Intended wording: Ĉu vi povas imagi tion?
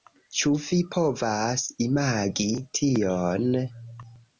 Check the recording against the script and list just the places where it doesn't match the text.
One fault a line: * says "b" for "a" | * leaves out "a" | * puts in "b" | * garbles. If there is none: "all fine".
all fine